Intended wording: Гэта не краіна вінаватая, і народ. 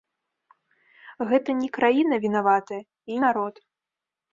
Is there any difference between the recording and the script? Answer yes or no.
no